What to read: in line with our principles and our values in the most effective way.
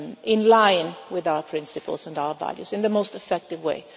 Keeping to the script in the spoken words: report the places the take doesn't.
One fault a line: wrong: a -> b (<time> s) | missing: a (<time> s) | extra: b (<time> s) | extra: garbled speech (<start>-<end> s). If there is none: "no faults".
no faults